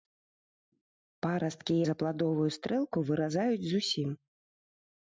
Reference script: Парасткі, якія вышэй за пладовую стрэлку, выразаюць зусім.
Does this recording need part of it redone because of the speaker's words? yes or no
yes